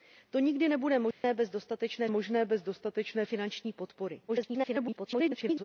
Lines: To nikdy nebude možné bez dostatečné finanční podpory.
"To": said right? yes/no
yes